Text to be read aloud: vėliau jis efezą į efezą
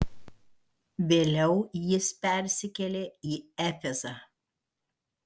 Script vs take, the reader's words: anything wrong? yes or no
yes